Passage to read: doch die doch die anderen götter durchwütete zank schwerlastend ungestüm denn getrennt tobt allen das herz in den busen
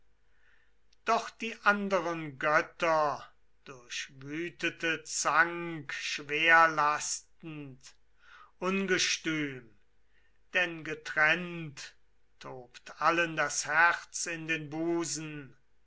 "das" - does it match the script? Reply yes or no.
yes